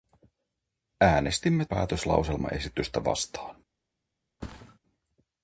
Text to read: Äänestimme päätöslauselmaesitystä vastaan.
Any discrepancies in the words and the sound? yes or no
yes